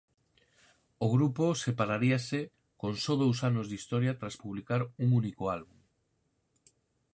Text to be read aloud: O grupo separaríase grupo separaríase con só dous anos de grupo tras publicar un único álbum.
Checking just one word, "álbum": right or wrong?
right